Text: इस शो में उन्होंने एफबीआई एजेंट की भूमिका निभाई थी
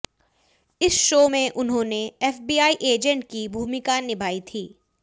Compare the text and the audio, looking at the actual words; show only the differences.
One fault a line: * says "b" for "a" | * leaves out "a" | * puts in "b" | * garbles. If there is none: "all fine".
all fine